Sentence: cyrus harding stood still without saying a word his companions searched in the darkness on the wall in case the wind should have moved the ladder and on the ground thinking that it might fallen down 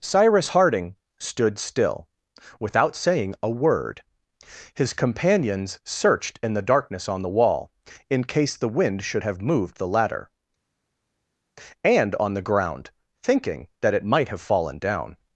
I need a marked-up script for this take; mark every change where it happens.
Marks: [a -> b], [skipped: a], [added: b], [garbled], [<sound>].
cyrus harding stood still without saying a word his companions searched in the darkness on the wall in case the wind should have moved the ladder and on the ground thinking that it might [added: have] fallen down